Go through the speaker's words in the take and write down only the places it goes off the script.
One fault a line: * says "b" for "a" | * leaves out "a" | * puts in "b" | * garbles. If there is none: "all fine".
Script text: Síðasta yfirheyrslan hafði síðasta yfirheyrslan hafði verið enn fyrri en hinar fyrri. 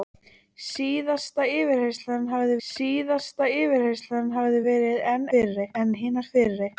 all fine